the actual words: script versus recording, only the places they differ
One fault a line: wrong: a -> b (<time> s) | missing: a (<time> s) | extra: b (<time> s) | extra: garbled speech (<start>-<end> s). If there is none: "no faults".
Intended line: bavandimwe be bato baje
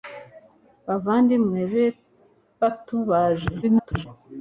extra: garbled speech (3.6-4.1 s)